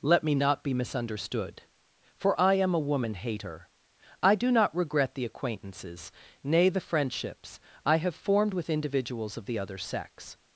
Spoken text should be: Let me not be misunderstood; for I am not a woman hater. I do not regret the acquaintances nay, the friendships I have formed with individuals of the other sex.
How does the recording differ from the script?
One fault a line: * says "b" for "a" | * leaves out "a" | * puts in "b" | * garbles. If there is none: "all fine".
* leaves out "not"